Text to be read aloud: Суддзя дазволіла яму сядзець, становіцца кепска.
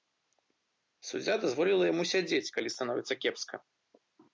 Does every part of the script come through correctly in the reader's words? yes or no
no